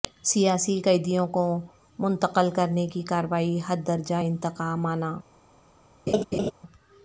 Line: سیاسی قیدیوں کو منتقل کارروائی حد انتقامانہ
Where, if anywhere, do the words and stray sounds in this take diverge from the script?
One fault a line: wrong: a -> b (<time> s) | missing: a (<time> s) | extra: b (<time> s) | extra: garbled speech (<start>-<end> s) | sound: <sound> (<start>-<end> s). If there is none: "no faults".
extra: کرنے کی (2.5 s)
extra: درجہ (3.9 s)
sound: laugh (6.1-6.5 s)